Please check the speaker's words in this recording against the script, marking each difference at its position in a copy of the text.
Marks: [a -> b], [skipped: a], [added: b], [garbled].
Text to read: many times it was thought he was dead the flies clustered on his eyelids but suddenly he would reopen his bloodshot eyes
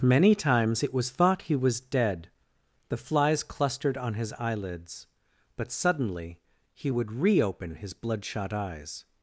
many times it was thought he was dead the flies clustered on his eyelids but suddenly he would reopen his bloodshot eyes